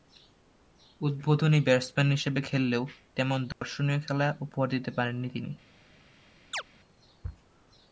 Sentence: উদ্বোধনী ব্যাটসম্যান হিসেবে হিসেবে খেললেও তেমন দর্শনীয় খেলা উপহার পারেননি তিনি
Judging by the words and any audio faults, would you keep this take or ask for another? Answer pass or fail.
fail